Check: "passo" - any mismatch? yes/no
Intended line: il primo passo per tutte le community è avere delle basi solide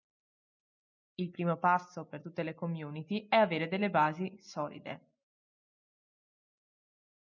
no